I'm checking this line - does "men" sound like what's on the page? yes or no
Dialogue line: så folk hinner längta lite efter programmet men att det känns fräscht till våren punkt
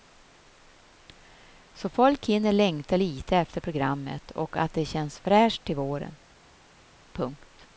no